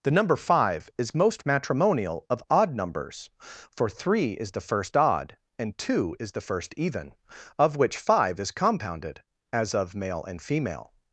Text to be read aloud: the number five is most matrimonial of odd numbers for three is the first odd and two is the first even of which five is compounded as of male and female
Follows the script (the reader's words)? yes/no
yes